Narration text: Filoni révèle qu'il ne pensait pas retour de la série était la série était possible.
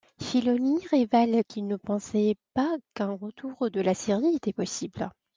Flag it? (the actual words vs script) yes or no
yes